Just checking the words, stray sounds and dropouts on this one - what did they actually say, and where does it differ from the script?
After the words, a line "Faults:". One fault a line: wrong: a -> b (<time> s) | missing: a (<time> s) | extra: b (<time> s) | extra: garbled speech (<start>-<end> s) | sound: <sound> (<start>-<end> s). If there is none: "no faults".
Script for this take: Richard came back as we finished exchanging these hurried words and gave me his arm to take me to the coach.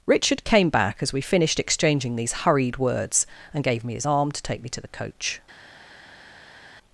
Richard came back as we finished exchanging these hurried words and gave me his arm to take me to the coach.
Faults:
no faults